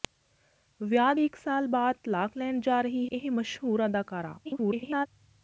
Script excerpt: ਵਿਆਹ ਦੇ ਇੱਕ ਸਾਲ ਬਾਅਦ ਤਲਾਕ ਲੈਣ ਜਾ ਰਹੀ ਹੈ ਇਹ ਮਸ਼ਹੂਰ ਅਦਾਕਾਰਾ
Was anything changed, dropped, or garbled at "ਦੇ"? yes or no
yes